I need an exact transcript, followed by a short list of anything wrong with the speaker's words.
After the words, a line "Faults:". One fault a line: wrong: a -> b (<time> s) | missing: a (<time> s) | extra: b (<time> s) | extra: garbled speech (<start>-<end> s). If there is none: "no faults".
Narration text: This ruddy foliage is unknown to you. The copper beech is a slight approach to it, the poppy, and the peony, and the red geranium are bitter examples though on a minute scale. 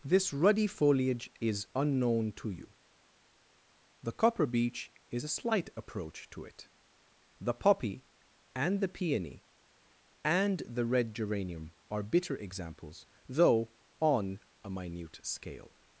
This ruddy foliage is unknown to you. The copper beech is a slight approach to it, the poppy, and the peony, and the red geranium are bitter examples though on a minute scale.
Faults:
no faults